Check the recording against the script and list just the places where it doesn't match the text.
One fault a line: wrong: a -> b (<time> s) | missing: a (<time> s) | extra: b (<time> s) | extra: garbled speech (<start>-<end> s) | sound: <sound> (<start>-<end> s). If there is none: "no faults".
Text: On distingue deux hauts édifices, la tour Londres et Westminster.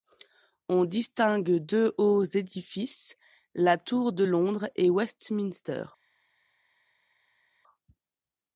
extra: de (4.1 s)